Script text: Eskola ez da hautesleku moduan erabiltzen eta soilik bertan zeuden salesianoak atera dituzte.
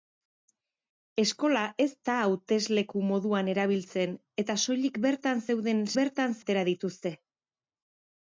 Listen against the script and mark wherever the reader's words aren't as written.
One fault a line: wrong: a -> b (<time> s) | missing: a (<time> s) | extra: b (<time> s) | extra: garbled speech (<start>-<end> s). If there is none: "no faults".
wrong: salesianoak -> bertan (6.0 s)